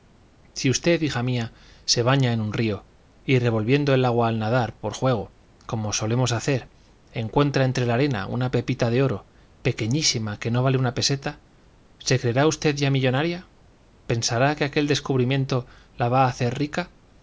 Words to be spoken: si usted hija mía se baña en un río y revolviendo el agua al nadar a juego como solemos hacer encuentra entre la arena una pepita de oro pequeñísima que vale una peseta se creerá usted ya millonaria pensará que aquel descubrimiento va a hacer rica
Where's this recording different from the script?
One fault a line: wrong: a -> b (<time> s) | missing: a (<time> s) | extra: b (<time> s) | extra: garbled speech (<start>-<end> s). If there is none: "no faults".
wrong: a -> por (4.8 s)
extra: no (10.5 s)
extra: la (15.9 s)